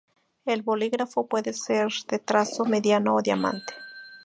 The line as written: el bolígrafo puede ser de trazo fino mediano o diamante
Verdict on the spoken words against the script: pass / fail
fail